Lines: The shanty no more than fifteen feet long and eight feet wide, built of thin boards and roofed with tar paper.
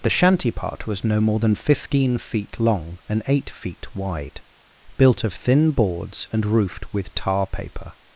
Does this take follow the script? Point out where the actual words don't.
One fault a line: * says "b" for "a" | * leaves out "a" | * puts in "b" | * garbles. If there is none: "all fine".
* puts in "part was"